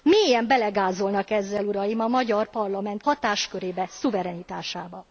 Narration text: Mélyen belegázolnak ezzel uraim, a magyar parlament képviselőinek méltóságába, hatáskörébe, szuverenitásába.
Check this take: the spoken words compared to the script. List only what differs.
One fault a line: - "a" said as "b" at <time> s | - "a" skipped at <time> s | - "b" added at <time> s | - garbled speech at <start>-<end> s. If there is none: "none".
- "képviselőinek méltóságába" skipped at 3.0 s